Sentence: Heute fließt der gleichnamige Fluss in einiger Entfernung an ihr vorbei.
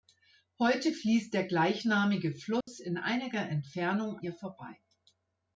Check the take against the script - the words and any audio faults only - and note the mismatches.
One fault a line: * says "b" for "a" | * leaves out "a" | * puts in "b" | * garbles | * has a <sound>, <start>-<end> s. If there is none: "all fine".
* has a dropout, 2.6-2.7 s
* leaves out "an"